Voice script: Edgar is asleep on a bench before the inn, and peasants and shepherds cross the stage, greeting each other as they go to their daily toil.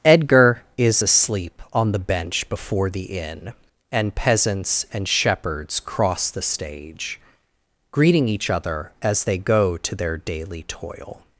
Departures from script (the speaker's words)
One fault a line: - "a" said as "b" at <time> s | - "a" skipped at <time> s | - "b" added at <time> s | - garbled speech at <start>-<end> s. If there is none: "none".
- "a" said as "the" at 1.9 s